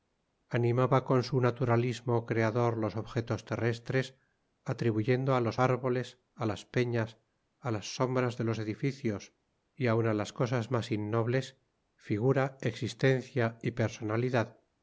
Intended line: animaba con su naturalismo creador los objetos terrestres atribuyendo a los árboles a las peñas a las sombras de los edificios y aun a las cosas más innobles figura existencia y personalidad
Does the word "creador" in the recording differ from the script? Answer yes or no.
no